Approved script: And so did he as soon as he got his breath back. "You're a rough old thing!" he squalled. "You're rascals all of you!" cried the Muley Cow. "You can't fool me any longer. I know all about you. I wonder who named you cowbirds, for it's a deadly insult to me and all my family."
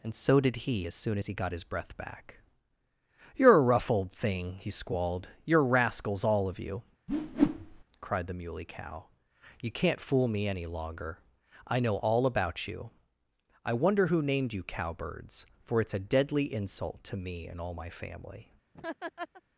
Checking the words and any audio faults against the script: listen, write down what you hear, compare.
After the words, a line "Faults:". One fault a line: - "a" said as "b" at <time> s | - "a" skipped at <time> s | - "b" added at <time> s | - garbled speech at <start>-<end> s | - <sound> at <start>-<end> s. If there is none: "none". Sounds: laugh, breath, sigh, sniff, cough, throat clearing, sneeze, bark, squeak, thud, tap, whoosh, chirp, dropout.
And so did he as soon as he got his breath back. "You're a rough old thing!" he squalled. "You're rascals all of you!" cried the Muley Cow. "You can't fool me any longer. I know all about you. I wonder who named you cowbirds, for it's a deadly insult to me and all my family."
Faults:
- whoosh at 7.1-7.8 s
- laugh at 18.7-19.4 s